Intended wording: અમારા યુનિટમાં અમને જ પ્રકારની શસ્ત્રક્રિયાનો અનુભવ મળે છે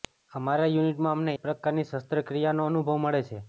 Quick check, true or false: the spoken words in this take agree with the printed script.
true